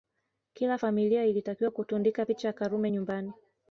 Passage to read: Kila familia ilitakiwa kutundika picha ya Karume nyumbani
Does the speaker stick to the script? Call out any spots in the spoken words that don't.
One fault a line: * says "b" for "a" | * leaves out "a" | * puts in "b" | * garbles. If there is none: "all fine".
all fine